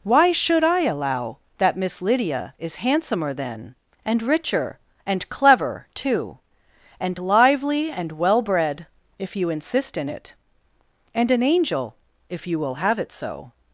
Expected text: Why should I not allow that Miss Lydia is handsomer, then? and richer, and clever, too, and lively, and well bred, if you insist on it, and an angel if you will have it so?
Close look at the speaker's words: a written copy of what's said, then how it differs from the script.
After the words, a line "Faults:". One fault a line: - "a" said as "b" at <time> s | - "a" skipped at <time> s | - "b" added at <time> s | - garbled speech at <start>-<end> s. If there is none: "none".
Why should I allow that Miss Lydia is handsomer, then? and richer, and clever, too, and lively, and well bred, if you insist in it, and an angel if you will have it so?
Faults:
- "not" skipped at 0.8 s
- "on" said as "in" at 10.0 s